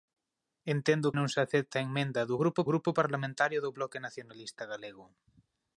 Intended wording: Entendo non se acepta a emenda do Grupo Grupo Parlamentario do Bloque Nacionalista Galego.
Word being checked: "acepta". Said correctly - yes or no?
yes